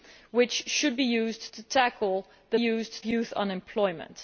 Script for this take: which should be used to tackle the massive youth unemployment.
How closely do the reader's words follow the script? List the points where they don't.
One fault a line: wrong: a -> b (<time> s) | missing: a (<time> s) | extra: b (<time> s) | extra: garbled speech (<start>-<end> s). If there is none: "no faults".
wrong: massive -> used (2.5 s)